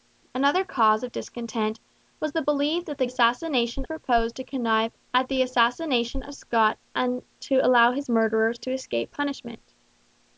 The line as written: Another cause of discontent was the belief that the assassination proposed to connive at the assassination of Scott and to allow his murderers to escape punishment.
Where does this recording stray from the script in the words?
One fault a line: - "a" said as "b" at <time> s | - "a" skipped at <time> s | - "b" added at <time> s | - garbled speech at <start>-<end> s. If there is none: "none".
none